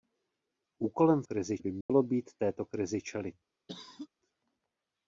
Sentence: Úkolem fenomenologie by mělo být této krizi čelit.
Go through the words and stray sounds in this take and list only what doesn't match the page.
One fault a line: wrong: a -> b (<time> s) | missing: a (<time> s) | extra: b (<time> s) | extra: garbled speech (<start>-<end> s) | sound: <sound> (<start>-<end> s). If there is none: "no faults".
wrong: fenomenologie -> krizi (1.2 s)
sound: dropout (1.8-1.9 s)
sound: cough (3.7-4.1 s)